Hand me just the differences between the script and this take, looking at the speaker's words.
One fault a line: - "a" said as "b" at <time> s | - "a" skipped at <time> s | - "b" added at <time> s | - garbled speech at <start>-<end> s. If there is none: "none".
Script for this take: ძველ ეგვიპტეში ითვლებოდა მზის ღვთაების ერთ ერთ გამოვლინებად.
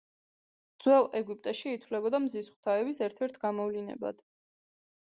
none